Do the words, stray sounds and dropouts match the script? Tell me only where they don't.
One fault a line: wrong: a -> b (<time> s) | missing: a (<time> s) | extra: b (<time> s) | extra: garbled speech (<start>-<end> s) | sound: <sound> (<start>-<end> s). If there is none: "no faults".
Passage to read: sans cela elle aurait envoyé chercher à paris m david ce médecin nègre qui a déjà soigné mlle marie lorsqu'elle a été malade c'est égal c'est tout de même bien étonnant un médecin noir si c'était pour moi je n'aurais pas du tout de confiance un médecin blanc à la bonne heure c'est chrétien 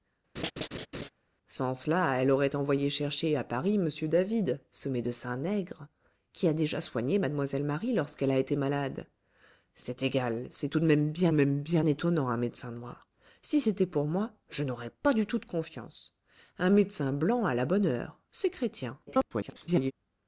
sound: laugh (0.4-1.1 s)
extra: même bien (11.3 s)
extra: garbled speech (19.1-19.9 s)